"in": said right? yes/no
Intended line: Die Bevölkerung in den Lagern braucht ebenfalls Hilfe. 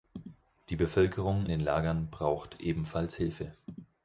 no